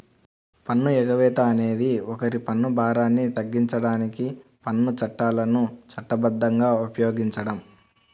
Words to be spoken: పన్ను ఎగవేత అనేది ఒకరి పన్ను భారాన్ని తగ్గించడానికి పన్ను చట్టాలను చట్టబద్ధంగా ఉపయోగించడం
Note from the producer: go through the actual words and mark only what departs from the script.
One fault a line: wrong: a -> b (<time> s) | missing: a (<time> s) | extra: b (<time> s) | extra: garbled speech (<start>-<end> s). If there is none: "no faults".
no faults